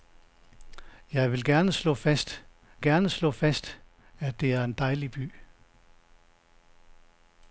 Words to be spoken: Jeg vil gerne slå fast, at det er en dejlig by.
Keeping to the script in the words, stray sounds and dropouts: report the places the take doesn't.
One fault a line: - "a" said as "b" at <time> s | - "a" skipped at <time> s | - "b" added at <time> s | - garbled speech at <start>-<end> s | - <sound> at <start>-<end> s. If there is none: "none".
- "gerne slå fast" added at 2.8 s